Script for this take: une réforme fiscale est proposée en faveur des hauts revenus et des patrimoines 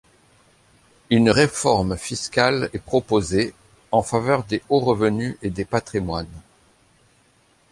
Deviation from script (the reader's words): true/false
false